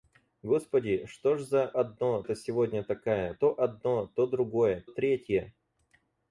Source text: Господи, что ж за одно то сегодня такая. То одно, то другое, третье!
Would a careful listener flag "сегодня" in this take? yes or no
no